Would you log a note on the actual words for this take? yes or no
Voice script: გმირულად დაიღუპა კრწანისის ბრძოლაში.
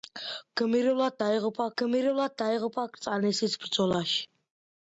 yes